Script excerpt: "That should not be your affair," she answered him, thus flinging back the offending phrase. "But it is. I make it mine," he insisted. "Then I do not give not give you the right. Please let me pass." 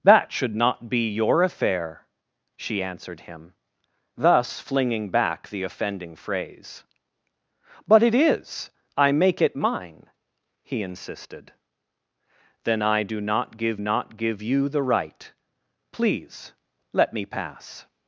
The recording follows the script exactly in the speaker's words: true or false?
true